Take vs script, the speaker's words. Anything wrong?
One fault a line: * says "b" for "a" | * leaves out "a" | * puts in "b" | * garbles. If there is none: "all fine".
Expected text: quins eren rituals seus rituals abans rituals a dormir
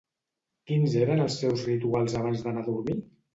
* says "els" for "rituals"
* says "d'anar" for "rituals"